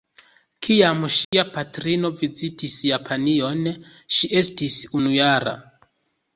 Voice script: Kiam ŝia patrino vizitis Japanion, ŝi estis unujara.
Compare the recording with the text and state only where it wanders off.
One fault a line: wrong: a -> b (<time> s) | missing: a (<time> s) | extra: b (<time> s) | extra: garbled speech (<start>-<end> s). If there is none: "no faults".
no faults